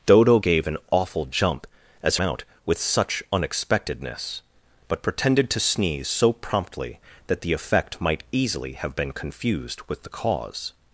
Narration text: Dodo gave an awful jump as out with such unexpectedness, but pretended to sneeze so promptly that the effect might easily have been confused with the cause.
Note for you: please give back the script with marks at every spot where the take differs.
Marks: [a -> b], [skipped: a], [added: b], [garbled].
Dodo gave an awful jump as out with such unexpectedness, but pretended to sneeze so promptly that the effect might easily have been confused with the cause.